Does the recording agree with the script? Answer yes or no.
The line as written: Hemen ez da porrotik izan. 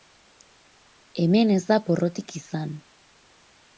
yes